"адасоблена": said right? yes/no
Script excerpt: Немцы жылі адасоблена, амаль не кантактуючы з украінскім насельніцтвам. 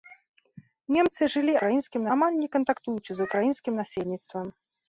no